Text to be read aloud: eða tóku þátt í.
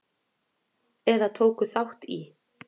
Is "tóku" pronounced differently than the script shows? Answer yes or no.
no